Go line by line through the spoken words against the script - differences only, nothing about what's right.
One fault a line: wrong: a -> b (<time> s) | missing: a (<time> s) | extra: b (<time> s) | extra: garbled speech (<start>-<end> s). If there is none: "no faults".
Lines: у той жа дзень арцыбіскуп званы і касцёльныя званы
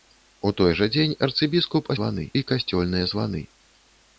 no faults